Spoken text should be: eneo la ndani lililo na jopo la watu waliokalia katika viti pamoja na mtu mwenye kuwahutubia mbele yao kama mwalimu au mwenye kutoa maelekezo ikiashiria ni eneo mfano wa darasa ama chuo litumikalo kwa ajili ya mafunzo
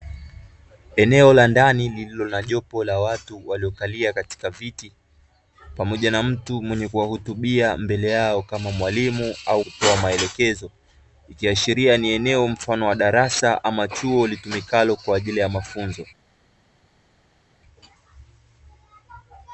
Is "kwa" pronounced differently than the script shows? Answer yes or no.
no